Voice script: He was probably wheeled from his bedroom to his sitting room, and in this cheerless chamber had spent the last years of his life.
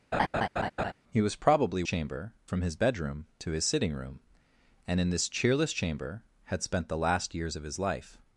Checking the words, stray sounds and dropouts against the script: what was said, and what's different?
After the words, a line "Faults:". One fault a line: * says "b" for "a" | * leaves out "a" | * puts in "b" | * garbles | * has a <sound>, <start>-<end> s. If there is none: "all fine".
He was probably chamber from his bedroom to his sitting room, and in this cheerless chamber had spent the last years of his life.
Faults:
* has a laugh, 0.1-0.9 s
* says "chamber" for "wheeled"